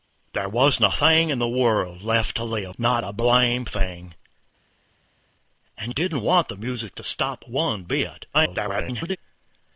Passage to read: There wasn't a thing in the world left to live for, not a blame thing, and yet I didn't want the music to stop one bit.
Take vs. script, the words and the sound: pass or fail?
fail